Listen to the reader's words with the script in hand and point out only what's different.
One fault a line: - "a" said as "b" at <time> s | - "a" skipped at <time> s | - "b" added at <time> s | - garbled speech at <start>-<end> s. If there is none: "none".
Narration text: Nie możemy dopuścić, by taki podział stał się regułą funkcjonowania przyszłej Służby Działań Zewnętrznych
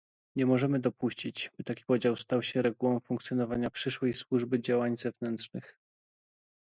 none